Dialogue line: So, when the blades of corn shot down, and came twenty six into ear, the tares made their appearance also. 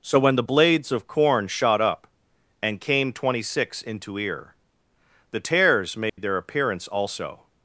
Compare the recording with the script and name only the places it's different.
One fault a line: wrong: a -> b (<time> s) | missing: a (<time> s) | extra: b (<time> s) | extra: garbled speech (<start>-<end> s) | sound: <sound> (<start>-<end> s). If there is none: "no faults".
wrong: down -> up (1.8 s)
sound: dropout (6.1-6.2 s)